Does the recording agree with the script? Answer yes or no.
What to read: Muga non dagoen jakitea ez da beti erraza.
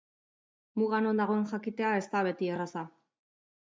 yes